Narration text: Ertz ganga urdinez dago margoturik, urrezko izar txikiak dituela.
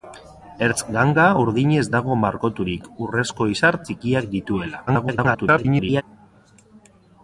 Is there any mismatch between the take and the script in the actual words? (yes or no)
yes